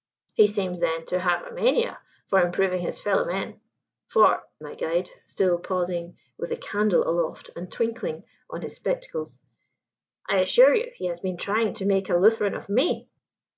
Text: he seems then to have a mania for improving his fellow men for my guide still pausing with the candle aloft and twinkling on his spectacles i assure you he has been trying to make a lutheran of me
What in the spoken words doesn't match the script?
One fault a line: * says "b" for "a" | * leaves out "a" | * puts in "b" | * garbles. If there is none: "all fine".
all fine